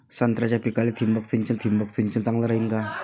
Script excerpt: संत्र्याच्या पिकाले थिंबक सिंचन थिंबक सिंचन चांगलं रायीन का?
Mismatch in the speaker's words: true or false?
false